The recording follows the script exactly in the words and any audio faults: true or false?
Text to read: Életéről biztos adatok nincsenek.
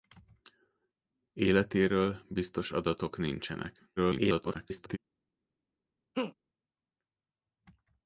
false